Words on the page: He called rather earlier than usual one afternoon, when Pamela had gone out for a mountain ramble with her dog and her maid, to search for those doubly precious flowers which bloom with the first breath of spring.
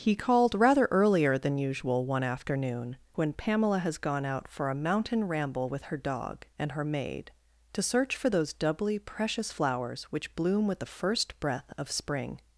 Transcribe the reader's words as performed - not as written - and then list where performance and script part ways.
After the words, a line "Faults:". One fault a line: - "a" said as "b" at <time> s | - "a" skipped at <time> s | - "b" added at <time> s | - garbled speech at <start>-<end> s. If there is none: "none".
He called rather earlier than usual one afternoon, when Pamela has gone out for a mountain ramble with her dog and her maid, to search for those doubly precious flowers which bloom with the first breath of spring.
Faults:
- "had" said as "has" at 3.8 s